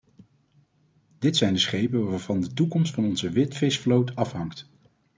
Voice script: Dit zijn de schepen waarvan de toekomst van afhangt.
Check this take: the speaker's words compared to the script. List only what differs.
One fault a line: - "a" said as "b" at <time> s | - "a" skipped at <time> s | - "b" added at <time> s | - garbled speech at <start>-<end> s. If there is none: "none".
- "onze witvisvloot" added at 3.0 s